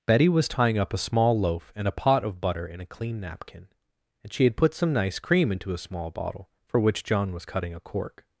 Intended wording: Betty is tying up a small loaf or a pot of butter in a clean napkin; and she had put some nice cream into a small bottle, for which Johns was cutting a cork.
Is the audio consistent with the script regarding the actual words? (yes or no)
no